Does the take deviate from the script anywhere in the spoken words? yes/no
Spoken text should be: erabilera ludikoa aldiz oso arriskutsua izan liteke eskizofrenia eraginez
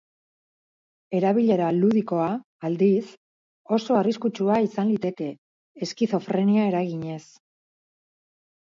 no